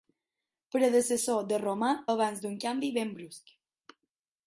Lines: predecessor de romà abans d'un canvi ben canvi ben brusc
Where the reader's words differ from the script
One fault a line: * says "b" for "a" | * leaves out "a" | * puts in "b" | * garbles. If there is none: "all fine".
* leaves out "canvi ben"